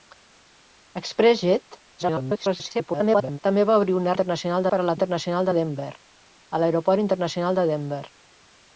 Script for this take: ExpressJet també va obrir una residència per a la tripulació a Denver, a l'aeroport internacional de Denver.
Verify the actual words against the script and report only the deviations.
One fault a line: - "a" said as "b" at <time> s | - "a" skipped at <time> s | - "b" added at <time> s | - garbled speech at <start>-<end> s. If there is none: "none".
- garbled speech at 2.0-3.4 s
- "residència" said as "internacional" at 4.1 s
- "tripulació" said as "internacional" at 5.0 s